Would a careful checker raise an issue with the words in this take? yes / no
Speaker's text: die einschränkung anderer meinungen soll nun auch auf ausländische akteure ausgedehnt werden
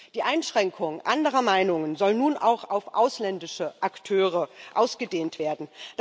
no